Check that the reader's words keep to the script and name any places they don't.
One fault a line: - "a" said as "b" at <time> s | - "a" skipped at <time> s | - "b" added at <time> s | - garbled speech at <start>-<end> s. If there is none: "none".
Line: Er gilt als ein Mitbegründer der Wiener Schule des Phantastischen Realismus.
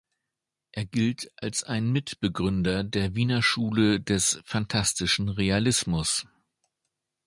none